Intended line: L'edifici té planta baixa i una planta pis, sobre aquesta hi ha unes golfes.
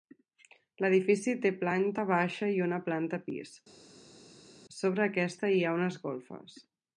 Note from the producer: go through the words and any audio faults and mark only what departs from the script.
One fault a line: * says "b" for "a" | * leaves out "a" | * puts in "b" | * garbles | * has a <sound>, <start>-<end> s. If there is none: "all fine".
all fine